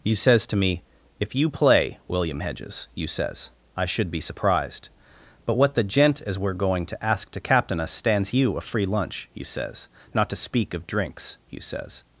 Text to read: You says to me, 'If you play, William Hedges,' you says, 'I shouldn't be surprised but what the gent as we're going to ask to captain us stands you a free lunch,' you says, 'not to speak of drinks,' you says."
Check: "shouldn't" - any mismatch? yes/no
yes